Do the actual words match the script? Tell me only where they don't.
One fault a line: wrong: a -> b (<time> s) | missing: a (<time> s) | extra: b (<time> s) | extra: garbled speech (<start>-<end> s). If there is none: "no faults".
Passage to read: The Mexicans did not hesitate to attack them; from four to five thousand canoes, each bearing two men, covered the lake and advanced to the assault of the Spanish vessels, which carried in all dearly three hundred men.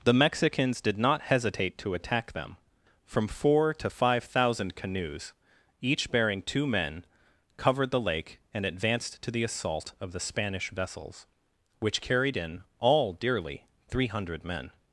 no faults